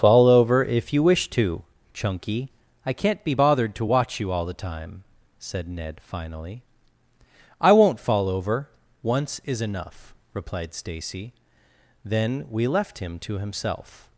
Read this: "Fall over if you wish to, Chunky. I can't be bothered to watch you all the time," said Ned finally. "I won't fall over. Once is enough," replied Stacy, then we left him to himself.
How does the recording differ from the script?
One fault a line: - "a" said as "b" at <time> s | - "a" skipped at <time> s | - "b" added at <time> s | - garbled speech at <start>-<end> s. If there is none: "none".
none